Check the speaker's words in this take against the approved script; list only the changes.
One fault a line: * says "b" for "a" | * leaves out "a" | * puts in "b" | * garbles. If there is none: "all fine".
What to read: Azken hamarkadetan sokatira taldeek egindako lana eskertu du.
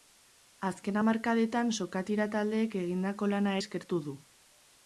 all fine